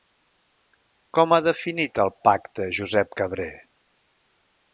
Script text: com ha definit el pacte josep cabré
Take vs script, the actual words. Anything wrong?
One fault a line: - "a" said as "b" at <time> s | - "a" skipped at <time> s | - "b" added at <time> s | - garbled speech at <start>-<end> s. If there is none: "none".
none